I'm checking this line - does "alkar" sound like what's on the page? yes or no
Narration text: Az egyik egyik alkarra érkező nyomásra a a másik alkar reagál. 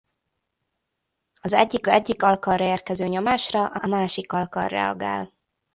yes